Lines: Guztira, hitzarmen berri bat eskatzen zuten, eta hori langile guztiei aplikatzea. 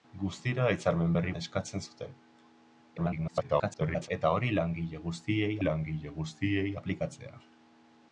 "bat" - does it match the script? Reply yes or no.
no